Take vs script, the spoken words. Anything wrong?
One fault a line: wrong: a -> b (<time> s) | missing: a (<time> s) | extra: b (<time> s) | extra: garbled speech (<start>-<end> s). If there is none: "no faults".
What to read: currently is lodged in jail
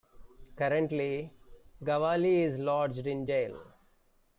extra: gawali (1.8 s)